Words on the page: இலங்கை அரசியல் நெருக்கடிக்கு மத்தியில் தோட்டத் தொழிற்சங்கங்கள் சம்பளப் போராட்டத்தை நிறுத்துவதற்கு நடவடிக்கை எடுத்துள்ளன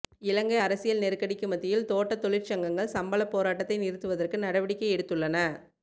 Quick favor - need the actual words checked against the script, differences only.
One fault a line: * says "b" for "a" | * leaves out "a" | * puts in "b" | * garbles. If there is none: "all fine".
all fine